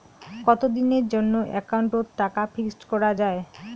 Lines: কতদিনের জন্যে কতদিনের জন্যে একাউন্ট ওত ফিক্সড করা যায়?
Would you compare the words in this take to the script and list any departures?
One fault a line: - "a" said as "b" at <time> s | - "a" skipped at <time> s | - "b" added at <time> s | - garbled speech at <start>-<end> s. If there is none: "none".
- "কতদিনের জন্যে" skipped at 1.4 s
- "টাকা" added at 2.2 s